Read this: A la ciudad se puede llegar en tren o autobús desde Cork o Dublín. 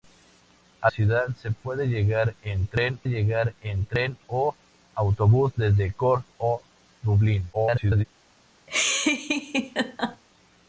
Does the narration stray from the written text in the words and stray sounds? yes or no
yes